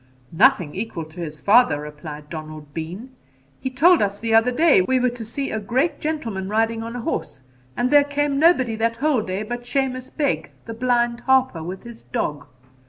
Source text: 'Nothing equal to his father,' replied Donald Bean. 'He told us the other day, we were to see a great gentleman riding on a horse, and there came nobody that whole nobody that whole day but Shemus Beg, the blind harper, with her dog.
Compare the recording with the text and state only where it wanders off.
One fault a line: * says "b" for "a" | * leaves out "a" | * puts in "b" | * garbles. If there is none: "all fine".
* leaves out "nobody that whole"
* says "his" for "her"